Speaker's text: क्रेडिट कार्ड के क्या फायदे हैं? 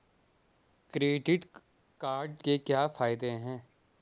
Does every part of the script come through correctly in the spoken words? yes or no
yes